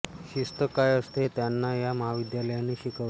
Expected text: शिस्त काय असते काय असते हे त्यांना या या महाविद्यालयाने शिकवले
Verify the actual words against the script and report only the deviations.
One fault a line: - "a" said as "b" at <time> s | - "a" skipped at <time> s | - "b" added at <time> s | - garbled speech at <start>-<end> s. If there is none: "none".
- "काय असते" skipped at 1.2 s
- "या" skipped at 1.9 s